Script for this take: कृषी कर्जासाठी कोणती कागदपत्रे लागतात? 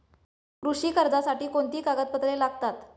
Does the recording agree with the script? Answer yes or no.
yes